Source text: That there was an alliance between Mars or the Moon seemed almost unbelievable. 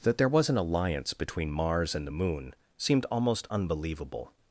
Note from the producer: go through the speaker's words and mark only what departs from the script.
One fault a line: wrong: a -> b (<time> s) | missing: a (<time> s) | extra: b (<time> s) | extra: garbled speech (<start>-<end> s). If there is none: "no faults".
wrong: or -> and (1.9 s)